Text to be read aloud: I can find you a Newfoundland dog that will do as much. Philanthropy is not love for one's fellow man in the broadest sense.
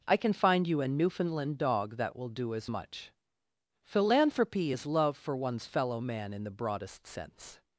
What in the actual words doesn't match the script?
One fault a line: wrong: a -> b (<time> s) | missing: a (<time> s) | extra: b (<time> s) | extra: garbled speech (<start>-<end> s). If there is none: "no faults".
missing: not (4.9 s)